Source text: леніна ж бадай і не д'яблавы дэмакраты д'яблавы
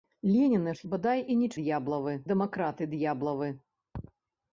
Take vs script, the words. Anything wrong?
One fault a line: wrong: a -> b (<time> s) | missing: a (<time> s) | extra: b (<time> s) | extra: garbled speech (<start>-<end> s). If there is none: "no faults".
no faults